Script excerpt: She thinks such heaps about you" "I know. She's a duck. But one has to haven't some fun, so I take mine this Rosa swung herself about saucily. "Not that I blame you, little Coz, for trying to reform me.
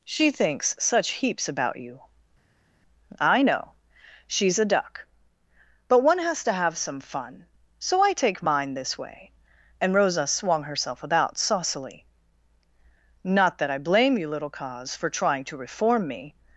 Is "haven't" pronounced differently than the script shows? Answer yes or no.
yes